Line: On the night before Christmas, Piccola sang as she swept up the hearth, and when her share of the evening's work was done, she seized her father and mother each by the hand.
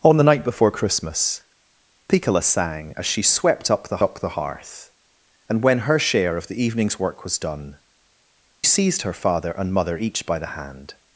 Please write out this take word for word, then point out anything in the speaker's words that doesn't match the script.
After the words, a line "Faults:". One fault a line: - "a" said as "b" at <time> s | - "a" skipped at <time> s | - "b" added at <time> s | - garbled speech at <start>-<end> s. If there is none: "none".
On the night before Christmas, Piccola sang as she swept up the up the hearth, and when her share of the evening's work was done, seized her father and mother each by the hand.
Faults:
- "up the" added at 4.0 s
- "she" skipped at 7.8 s